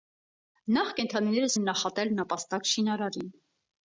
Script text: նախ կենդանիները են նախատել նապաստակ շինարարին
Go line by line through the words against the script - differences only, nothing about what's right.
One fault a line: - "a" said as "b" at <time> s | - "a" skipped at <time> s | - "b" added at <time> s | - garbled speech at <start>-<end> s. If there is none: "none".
none